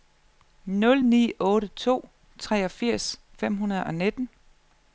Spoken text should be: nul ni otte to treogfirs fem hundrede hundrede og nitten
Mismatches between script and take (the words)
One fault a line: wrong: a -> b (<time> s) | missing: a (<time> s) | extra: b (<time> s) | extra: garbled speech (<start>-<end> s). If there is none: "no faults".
missing: hundrede (3.8 s)